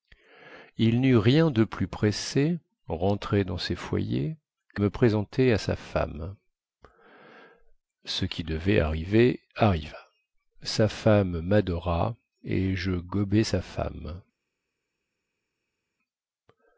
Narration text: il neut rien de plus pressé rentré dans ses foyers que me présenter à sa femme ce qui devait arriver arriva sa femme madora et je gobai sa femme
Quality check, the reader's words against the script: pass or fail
pass